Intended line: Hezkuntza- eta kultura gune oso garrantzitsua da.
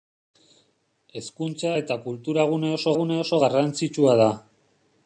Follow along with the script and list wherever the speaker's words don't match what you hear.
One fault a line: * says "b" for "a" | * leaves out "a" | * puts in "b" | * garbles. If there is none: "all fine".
* puts in "gune oso"